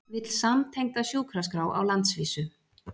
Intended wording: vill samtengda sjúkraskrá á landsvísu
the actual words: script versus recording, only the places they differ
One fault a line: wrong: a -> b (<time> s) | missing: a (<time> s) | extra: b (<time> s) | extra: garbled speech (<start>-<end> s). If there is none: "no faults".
no faults